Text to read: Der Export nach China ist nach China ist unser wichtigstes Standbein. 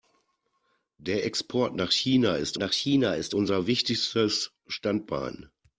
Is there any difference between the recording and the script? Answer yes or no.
no